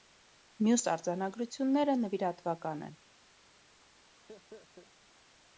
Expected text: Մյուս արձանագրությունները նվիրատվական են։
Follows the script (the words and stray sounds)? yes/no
no